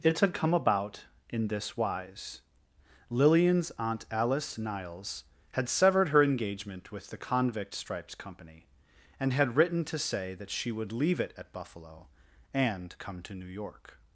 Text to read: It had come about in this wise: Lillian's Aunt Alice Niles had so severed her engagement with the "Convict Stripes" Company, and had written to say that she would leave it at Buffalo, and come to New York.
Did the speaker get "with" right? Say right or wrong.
right